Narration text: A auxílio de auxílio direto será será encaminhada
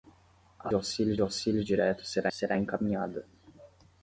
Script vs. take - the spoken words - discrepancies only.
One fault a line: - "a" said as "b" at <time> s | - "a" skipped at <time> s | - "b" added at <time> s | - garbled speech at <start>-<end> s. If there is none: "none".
none